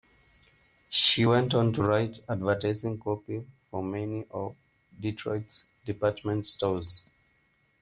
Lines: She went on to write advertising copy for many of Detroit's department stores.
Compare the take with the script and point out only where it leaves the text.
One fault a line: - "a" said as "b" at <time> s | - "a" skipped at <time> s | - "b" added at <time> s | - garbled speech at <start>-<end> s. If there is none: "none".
none